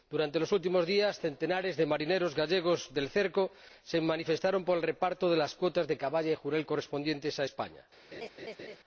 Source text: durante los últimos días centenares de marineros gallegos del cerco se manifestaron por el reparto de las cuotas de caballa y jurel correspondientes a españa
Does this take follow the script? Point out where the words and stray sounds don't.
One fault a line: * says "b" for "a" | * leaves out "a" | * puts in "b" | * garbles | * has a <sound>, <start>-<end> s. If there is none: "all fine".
* has a laugh, 8.1-8.8 s